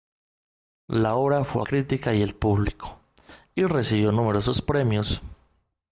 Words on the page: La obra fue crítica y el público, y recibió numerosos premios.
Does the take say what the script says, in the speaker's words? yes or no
yes